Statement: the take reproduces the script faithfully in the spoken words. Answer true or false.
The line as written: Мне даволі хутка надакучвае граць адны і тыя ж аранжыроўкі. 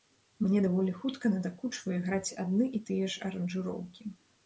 true